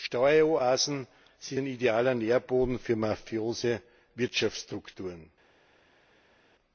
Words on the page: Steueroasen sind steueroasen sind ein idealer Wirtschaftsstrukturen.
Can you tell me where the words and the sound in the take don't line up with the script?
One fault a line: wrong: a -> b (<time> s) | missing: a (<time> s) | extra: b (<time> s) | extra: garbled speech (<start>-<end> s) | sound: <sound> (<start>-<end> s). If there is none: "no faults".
wrong: steueroasen sind ein idealer -> ein idealer Nährboden für mafiose (1.6 s)